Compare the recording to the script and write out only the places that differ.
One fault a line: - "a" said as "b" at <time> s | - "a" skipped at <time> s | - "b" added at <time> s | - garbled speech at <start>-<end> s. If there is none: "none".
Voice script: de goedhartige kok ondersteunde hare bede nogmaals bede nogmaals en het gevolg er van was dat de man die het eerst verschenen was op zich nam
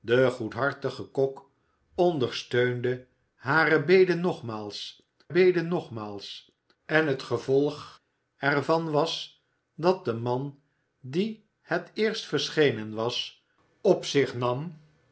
none